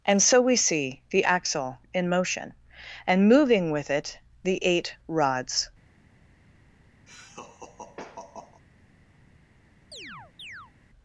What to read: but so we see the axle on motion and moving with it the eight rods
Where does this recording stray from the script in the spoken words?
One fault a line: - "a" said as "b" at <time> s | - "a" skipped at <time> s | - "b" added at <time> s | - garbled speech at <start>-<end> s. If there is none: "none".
- "but" said as "and" at 0.1 s
- "on" said as "in" at 1.9 s